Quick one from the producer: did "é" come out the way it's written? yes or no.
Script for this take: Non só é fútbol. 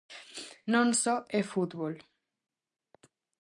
yes